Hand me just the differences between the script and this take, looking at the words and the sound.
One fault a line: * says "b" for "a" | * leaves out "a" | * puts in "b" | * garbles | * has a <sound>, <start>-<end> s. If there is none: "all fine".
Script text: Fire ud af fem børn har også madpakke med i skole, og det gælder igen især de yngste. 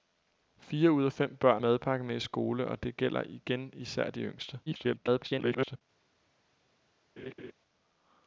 * leaves out "har også"
* garbles
* has a laugh, 7.2-7.5 s